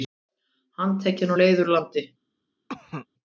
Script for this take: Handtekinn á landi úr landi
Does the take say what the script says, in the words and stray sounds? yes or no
no